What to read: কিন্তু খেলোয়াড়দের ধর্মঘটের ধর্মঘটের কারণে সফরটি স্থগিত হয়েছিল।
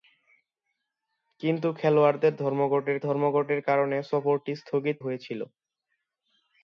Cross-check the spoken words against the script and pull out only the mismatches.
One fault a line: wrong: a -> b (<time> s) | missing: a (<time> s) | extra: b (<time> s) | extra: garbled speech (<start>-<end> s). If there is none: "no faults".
no faults